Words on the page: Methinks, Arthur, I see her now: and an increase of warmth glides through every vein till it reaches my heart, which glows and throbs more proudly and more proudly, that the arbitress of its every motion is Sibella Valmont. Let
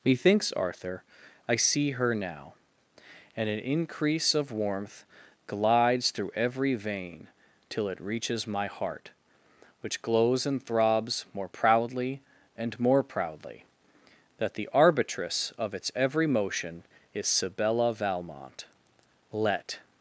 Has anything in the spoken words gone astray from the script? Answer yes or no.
no